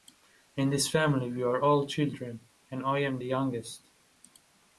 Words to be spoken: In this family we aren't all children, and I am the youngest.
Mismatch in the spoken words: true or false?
true